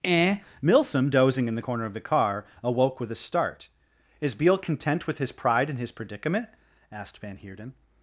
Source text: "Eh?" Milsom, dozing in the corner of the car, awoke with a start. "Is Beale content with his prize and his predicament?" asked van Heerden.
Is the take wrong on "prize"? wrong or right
wrong